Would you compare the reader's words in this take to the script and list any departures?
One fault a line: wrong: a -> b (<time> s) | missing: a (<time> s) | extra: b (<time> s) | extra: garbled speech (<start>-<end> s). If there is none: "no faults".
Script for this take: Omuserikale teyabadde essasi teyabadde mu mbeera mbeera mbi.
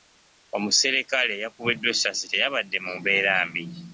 wrong: teyabadde -> eyakubiddwa (1.4 s)
missing: mbeera (3.3 s)